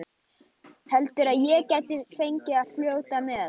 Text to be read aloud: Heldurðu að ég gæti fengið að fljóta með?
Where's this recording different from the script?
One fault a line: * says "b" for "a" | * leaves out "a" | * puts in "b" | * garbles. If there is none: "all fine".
* puts in "að"